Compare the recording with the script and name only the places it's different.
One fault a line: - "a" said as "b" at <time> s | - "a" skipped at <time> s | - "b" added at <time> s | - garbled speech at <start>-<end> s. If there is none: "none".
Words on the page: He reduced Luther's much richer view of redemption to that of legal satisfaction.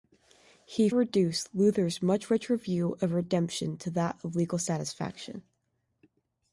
none